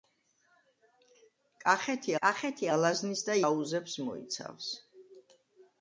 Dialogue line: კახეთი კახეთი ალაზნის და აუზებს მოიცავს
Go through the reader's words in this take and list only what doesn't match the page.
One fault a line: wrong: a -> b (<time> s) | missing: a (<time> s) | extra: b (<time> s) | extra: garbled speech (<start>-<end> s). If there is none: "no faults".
no faults